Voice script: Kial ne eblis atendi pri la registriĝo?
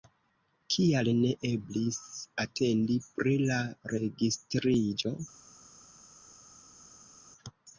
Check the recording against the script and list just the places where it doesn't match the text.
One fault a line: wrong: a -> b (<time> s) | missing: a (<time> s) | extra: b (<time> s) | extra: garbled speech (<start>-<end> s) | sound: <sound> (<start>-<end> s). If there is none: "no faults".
no faults